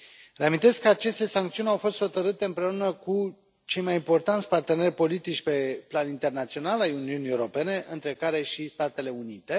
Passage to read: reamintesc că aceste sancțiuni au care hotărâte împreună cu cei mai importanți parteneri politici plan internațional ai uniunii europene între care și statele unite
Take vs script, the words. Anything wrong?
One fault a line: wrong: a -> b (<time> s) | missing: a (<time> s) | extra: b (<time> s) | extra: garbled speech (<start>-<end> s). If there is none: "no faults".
wrong: care -> fost (1.7 s)
extra: pe (5.4 s)